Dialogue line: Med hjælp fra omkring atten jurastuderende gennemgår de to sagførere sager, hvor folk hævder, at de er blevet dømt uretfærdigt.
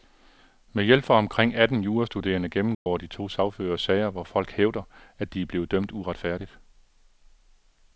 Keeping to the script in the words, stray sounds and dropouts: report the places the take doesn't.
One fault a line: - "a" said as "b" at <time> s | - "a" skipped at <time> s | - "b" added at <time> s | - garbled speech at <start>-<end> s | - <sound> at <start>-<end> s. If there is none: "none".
- dropout at 2.7-2.9 s